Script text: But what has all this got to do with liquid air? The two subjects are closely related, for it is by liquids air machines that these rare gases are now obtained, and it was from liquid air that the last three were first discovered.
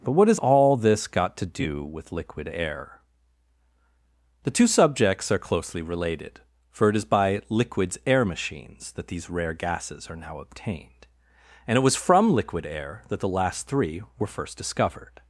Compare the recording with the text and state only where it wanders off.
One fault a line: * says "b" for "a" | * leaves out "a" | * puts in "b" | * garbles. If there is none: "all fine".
all fine